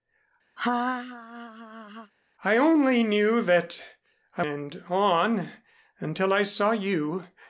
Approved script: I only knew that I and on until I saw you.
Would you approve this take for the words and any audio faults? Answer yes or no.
no